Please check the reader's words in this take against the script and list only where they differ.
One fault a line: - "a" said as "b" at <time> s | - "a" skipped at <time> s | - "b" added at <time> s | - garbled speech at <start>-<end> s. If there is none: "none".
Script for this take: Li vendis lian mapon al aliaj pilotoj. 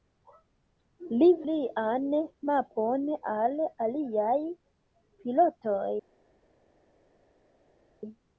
- "vendis" skipped at 1.3 s